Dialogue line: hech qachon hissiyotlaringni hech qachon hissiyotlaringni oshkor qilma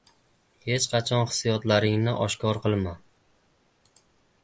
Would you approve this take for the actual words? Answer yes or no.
no